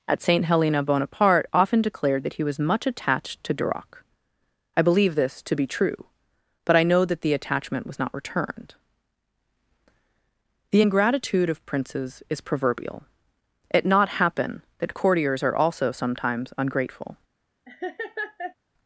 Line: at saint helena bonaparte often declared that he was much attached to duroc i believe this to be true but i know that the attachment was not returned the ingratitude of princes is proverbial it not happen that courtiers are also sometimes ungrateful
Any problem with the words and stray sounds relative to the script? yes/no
yes